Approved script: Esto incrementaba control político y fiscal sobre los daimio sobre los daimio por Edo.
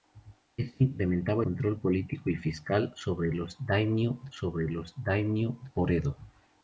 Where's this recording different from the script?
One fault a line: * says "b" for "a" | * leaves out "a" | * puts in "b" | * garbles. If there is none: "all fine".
all fine